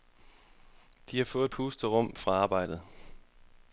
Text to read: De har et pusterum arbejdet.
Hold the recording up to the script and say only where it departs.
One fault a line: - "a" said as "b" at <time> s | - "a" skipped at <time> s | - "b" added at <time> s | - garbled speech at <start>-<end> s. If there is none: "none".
- "fået" added at 1.2 s
- "fra" added at 2.2 s